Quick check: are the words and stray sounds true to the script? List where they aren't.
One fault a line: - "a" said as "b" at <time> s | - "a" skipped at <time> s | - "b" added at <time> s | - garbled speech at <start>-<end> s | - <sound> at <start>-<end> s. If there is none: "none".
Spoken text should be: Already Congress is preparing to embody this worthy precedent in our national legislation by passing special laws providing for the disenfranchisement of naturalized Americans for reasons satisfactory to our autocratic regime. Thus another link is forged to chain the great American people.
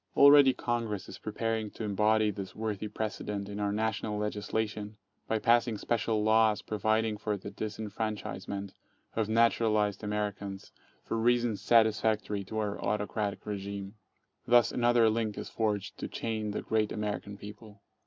none